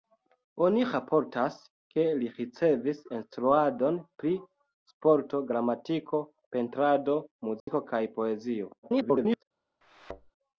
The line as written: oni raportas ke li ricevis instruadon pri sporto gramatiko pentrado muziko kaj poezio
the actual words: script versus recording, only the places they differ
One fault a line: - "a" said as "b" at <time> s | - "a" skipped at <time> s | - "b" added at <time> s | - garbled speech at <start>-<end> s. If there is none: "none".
- garbled speech at 8.8-9.4 s